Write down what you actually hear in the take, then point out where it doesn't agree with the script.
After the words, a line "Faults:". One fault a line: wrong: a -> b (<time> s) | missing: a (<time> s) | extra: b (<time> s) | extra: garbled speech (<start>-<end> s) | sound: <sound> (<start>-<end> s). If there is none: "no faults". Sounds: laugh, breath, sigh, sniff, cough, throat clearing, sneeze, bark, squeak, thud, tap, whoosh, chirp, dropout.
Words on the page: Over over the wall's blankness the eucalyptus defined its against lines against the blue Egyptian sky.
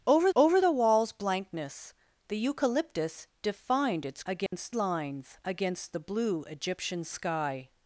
Over over the wall's blankness the eucalyptus defined its against lines against the blue Egyptian sky.
Faults:
sound: dropout (4.5-4.5 s)